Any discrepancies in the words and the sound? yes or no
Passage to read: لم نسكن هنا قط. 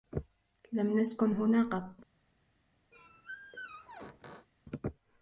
yes